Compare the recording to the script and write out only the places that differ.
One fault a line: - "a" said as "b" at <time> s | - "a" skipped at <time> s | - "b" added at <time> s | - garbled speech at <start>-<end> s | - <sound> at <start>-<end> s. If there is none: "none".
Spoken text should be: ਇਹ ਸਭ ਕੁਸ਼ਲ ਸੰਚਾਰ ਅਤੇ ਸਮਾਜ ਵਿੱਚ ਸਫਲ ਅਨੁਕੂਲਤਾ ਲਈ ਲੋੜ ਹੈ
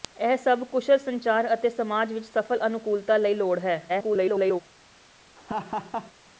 - garbled speech at 3.9-4.6 s
- laugh at 5.4-6.1 s